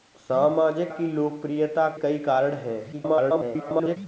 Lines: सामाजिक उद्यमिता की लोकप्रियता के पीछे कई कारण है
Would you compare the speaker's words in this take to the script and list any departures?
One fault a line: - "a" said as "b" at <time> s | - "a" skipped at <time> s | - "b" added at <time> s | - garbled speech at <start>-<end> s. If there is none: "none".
- "उद्यमिता" skipped at 0.9 s
- "के पीछे" skipped at 1.9 s
- garbled speech at 2.9-4.0 s